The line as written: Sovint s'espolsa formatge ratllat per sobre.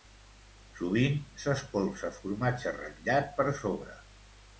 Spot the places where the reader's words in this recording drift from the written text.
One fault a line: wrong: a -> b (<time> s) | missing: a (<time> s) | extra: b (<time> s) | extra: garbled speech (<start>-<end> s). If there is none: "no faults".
no faults